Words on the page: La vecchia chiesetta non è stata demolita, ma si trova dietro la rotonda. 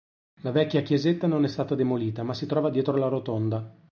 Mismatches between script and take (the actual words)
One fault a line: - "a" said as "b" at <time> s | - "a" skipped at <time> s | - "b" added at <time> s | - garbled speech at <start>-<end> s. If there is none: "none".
none